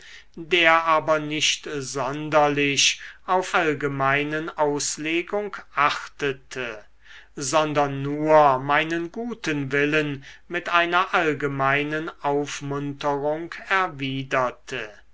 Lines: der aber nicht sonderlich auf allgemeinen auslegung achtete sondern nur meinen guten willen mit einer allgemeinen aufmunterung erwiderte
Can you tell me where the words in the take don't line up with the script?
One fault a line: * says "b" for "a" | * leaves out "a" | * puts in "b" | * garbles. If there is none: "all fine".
all fine